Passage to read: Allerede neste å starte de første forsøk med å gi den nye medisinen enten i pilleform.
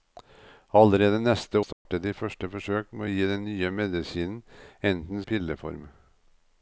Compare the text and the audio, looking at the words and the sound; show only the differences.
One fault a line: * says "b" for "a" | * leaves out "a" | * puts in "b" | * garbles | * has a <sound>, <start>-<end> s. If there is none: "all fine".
* has a dropout, 1.7-1.9 s